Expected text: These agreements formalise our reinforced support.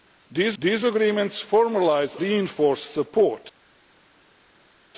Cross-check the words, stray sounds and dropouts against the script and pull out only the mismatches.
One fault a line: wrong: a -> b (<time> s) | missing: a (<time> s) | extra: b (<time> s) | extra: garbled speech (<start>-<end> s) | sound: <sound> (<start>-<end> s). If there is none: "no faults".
extra: these (0.6 s)
missing: our (2.2 s)